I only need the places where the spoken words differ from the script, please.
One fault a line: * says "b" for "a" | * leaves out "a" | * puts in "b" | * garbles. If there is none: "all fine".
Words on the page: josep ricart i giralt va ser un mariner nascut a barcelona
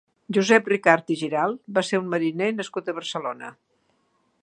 all fine